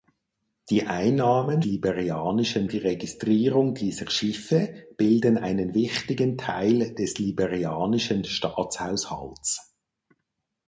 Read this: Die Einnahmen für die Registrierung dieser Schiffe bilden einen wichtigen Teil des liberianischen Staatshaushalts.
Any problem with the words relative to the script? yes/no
yes